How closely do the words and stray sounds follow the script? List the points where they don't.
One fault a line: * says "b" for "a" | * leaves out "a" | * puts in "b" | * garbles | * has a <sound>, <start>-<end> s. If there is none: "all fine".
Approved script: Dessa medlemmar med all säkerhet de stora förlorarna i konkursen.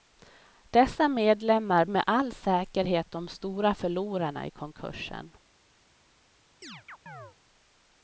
* has a chirp, 6.6-7.4 s